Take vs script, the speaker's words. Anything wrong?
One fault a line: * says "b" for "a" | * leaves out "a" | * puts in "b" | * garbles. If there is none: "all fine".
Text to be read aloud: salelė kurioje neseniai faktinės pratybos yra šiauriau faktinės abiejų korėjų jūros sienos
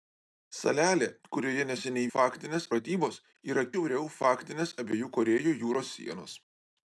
all fine